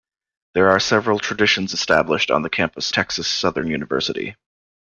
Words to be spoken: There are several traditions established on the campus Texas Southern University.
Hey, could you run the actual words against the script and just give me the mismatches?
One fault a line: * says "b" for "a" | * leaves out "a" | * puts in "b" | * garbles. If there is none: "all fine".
all fine